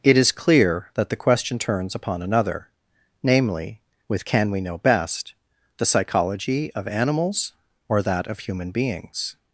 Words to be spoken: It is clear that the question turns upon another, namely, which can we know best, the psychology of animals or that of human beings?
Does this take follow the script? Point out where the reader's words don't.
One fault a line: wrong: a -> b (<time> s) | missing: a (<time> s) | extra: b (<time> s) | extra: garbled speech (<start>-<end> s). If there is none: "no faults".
wrong: which -> with (4.1 s)